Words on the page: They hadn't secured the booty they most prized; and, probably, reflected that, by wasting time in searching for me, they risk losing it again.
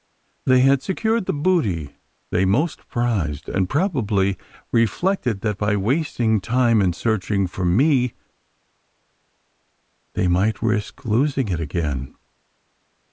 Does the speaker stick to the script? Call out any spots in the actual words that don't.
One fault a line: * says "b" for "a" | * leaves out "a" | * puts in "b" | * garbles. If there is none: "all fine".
* says "had" for "hadn't"
* puts in "might"